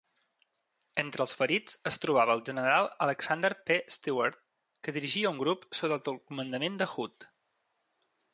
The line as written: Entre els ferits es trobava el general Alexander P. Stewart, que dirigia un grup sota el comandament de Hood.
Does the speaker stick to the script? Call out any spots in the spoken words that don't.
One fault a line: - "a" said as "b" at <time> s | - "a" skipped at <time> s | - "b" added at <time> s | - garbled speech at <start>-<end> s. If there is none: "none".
none